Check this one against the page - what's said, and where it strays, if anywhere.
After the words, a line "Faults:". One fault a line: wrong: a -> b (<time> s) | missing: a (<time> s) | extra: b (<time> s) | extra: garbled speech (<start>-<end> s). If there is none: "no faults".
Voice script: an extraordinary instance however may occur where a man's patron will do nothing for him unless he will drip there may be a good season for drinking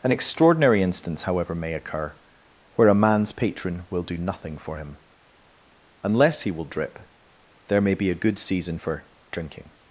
an extraordinary instance however may occur where a man's patron will do nothing for him unless he will drip there may be a good season for drinking
Faults:
no faults